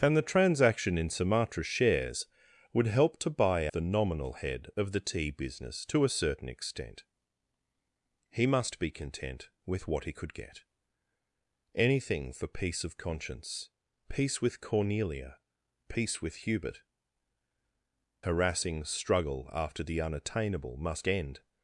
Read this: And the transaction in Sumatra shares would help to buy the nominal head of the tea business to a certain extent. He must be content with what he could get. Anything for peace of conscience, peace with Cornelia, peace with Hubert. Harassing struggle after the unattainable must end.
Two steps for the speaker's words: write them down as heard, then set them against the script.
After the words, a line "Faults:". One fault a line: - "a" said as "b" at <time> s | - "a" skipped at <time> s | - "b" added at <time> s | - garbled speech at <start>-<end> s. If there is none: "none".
And the transaction in Sumatra shares would help to buy the nominal head of the tea business to a certain extent. He must be content with what he could get. Anything for peace of conscience, peace with Cornelia, peace with Hubert. Harassing struggle after the unattainable must end.
Faults:
none